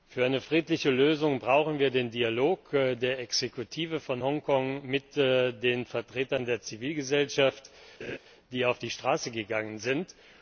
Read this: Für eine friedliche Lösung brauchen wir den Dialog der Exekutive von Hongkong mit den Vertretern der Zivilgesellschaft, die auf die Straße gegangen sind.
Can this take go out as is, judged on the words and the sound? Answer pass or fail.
fail